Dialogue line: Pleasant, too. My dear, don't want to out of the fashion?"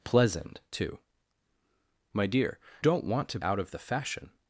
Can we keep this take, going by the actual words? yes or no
yes